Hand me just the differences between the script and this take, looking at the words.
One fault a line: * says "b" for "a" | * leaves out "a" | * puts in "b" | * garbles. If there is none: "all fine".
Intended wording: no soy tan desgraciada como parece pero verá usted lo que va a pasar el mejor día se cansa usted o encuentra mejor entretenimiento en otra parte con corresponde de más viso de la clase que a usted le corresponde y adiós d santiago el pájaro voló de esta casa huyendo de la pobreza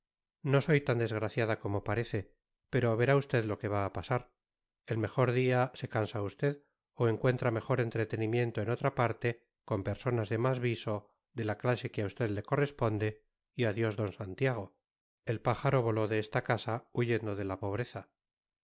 * says "personas" for "corresponde"